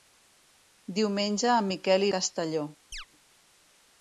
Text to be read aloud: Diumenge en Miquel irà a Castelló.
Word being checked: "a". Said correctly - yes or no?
no